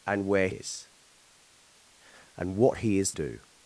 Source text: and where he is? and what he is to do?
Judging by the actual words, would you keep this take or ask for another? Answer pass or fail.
fail